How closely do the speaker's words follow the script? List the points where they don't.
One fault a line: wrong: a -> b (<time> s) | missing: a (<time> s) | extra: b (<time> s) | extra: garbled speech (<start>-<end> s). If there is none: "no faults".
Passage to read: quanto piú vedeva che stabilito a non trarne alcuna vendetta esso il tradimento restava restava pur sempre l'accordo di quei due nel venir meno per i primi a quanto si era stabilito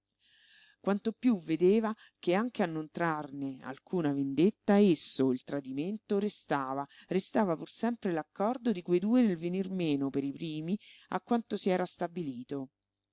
wrong: stabilito -> anche (2.3 s)